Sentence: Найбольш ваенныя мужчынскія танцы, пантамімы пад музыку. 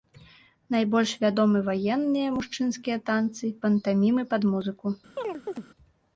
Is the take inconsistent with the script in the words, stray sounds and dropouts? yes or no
yes